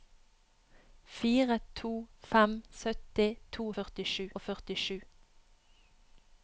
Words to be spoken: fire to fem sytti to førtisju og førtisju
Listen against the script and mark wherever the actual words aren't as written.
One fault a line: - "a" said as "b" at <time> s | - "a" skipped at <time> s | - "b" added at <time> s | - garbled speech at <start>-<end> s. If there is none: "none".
none